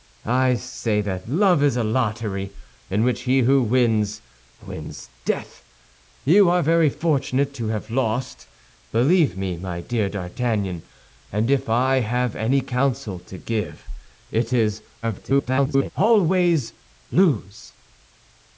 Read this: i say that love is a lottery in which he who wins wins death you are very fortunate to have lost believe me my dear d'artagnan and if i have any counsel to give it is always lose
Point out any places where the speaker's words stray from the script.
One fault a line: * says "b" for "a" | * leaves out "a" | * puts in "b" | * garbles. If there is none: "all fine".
* garbles